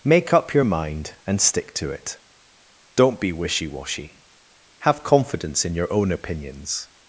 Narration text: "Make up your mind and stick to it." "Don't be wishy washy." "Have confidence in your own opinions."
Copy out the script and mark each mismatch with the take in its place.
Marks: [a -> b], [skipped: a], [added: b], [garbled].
"Make up your mind and stick to it." "Don't be wishy washy." "Have confidence in your own opinions."